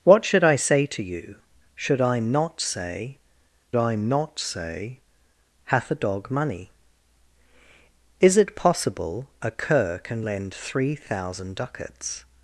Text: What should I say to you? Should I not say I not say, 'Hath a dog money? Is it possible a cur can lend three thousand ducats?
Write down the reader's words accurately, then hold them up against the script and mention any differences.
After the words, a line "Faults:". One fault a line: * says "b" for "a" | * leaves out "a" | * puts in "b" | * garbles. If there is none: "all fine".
What should I say to you? Should I not say I not say, 'Hath a dog money? Is it possible a cur can lend three thousand ducats?
Faults:
all fine